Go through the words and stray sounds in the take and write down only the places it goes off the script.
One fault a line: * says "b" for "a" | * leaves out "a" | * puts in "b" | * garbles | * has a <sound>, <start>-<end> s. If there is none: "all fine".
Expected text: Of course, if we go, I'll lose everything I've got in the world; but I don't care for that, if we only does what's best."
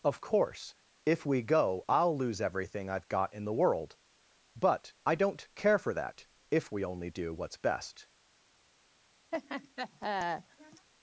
* says "do" for "does"
* has a laugh, 9.3-10.9 s